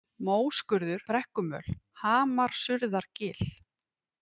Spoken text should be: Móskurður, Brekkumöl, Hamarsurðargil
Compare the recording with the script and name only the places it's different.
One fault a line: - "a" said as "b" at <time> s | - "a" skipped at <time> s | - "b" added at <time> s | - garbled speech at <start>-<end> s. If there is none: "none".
none